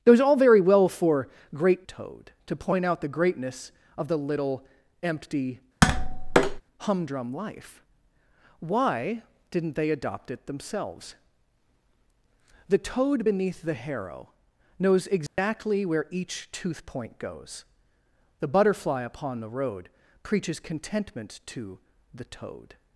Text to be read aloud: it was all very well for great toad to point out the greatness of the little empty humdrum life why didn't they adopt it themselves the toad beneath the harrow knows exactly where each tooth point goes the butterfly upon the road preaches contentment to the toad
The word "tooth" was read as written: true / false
true